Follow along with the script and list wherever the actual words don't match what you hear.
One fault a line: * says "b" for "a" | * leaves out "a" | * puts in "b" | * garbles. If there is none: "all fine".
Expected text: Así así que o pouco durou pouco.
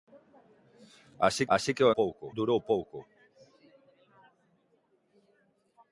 all fine